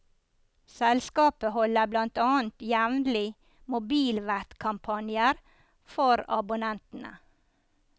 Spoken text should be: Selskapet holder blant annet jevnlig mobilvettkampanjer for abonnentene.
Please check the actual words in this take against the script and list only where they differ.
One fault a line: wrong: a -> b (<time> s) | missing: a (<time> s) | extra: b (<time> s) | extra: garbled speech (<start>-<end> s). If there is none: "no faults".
no faults